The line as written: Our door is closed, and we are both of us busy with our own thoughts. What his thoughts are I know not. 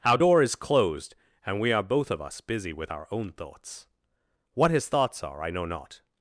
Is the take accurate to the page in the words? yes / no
yes